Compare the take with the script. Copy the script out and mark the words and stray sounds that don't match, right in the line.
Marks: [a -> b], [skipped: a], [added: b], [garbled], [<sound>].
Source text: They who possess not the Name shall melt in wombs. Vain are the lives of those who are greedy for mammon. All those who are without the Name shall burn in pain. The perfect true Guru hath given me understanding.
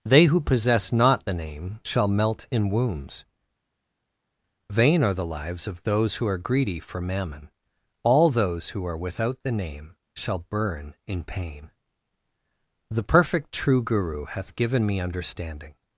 They who possess not the Name shall melt in wombs. Vain are the lives of those who are greedy for mammon. All those who are without the Name shall burn in pain. The perfect true Guru hath given me understanding.